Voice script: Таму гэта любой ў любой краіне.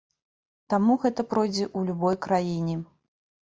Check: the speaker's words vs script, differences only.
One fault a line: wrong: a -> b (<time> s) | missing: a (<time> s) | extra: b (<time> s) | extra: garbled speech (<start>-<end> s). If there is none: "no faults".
wrong: любой -> пройдзе (1.3 s)